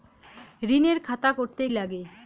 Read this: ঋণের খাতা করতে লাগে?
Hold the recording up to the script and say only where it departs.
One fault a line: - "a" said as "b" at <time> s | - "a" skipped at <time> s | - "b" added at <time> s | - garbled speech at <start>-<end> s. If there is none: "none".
none